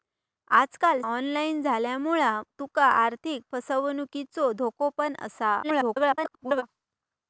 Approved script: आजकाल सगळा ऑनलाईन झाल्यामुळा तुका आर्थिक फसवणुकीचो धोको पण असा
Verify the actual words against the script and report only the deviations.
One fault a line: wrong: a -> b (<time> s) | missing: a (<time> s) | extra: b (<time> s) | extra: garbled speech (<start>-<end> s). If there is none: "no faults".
missing: सगळा (1.0 s)
extra: garbled speech (5.6-6.6 s)